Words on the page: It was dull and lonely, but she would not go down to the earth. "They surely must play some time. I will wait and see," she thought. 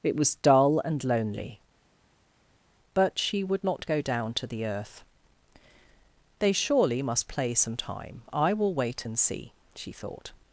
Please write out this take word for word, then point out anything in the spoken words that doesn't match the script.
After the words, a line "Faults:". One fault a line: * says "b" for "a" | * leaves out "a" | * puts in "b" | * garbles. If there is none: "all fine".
It was dull and lonely, but she would not go down to the earth. "They surely must play some time. I will wait and see," she thought.
Faults:
all fine